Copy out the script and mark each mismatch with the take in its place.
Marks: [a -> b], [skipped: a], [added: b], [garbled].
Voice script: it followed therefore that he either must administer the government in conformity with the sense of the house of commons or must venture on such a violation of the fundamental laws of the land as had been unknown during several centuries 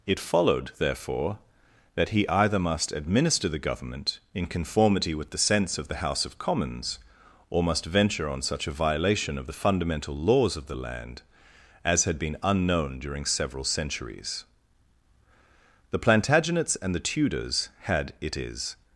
it followed therefore that he either must administer the government in conformity with the sense of the house of commons or must venture on such a violation of the fundamental laws of the land as had been unknown during several centuries [added: the plantagenets and the tudors had it is]